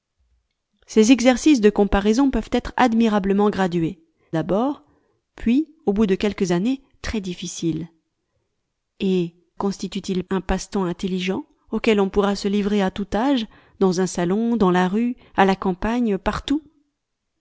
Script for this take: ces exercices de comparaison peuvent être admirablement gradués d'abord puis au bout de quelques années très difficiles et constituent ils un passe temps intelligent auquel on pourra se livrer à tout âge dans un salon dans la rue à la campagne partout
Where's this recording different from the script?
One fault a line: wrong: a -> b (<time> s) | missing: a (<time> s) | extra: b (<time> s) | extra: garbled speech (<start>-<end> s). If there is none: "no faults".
no faults